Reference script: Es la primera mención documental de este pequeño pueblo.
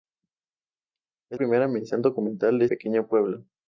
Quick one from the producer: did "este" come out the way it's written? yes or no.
no